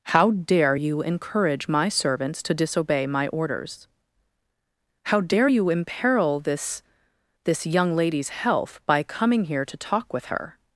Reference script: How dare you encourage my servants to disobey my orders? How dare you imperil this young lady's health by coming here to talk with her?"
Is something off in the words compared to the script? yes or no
yes